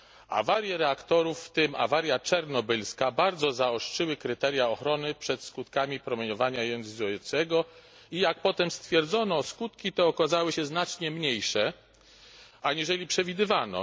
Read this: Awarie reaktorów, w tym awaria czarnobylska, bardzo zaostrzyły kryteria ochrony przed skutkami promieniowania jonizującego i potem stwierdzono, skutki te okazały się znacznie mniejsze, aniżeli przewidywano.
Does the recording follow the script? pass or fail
fail